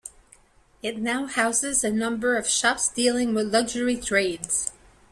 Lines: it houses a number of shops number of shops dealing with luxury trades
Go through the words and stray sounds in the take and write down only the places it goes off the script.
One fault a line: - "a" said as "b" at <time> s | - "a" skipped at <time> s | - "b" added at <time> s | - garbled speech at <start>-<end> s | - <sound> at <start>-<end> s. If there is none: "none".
- "now" added at 1.0 s
- "number of shops" skipped at 2.9 s